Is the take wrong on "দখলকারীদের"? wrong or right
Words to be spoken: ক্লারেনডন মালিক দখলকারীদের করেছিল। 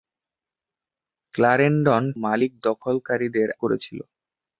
right